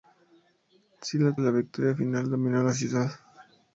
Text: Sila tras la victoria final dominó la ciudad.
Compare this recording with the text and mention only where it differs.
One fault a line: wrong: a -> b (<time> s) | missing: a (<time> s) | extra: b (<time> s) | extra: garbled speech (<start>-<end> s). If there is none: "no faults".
missing: tras (1.4 s)